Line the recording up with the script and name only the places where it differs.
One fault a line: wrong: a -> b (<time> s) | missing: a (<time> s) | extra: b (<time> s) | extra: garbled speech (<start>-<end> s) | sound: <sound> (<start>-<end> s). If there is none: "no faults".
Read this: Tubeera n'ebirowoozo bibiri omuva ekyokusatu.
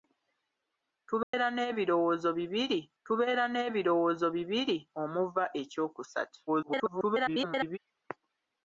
sound: dropout (1.2-1.3 s)
extra: tubeera n'ebirowoozo bibiri (3.0 s)
extra: garbled speech (6.5-7.8 s)